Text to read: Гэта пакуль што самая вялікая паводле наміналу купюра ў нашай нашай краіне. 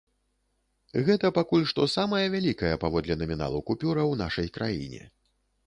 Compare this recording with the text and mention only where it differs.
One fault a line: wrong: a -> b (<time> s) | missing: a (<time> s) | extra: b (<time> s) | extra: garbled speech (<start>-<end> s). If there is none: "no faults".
missing: нашай (4.5 s)